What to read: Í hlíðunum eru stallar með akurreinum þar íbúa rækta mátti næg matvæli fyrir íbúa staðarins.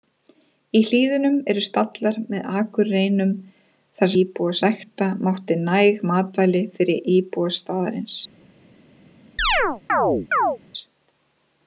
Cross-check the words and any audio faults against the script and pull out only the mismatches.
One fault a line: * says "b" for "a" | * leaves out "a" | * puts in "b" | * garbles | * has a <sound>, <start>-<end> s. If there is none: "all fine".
* has a chirp, 9.4-10.6 s